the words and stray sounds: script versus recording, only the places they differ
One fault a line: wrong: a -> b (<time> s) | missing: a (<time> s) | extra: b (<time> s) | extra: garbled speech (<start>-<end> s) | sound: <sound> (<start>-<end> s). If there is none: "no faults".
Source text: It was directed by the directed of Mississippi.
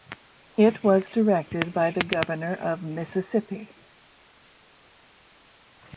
wrong: directed -> governor (2.0 s)